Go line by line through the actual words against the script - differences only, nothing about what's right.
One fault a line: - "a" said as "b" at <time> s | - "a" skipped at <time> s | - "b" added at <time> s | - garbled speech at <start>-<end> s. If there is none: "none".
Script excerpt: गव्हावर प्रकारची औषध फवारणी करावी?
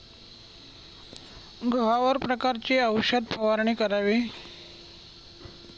none